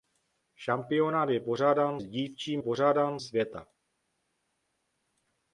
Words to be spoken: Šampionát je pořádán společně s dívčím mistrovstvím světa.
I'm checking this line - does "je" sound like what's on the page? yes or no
yes